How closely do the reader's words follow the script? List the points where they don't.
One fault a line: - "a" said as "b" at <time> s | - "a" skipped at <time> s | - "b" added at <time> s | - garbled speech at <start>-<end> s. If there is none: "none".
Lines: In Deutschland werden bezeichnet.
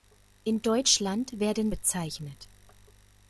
none